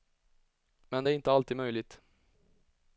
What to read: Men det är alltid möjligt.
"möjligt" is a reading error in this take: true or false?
false